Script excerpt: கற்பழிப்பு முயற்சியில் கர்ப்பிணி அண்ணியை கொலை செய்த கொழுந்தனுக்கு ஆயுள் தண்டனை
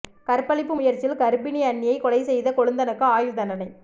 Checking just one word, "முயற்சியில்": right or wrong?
right